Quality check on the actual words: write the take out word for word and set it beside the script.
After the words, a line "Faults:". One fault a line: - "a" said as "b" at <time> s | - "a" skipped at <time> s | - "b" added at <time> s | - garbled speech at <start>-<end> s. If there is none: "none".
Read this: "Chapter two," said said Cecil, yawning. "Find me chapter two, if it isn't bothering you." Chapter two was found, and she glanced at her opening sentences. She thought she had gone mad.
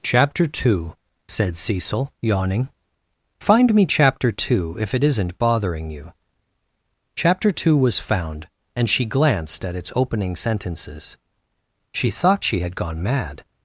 "Chapter two," said Cecil, yawning. "Find me chapter two, if it isn't bothering you." Chapter two was found, and she glanced at its opening sentences. She thought she had gone mad.
Faults:
- "said" skipped at 1.6 s
- "her" said as "its" at 9.8 s